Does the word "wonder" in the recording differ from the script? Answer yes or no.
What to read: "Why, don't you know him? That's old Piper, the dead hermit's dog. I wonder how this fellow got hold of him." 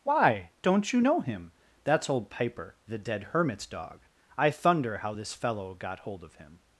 yes